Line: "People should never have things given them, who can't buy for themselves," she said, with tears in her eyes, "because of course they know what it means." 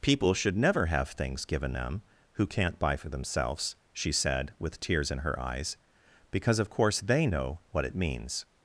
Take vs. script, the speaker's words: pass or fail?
pass